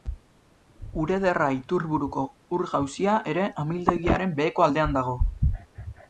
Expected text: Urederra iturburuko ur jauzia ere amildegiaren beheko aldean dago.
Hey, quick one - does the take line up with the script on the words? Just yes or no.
yes